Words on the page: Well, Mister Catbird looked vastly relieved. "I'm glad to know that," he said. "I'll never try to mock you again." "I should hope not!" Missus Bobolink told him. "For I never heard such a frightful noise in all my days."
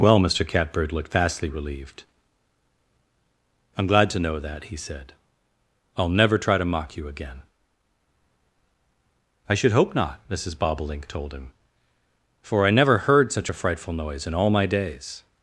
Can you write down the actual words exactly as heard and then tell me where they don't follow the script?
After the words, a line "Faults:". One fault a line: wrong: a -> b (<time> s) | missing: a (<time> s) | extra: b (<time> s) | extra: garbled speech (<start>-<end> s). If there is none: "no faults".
Well, Mister Catbird looked vastly relieved. "I'm glad to know that," he said. "I'll never try to mock you again." "I should hope not!" Missus Bobolink told him. "For I never heard such a frightful noise in all my days."
Faults:
no faults